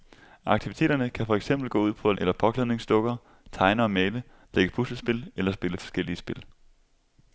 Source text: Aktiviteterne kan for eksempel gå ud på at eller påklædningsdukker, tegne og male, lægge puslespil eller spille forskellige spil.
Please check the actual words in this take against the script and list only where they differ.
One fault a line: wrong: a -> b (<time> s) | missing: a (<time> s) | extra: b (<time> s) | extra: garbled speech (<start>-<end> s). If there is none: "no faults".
no faults